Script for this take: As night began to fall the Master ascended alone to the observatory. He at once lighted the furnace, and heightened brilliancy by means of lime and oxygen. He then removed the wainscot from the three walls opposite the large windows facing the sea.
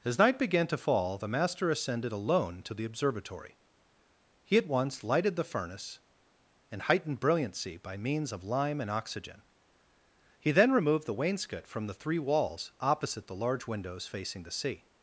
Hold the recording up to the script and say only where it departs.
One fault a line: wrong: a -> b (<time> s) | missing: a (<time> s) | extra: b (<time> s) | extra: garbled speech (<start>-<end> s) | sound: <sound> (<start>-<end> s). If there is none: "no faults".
no faults